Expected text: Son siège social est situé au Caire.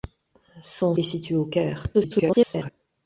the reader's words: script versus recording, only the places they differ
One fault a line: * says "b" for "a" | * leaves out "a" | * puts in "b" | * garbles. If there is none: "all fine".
* leaves out "siège social"
* garbles